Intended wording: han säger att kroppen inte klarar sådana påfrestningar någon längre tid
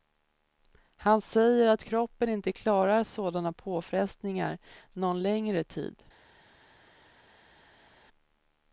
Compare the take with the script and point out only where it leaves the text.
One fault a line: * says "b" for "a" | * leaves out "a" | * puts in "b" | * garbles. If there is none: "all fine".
all fine